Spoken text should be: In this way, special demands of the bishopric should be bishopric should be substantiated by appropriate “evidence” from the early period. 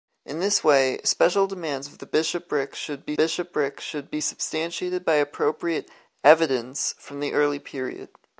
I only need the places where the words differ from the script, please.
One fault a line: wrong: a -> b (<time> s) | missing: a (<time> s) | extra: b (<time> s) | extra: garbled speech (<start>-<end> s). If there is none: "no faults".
no faults